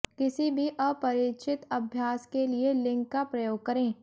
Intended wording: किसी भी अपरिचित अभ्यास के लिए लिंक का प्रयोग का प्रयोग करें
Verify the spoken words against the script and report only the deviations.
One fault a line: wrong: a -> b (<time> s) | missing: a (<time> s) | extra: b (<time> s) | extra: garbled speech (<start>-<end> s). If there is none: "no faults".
missing: का प्रयोग (3.6 s)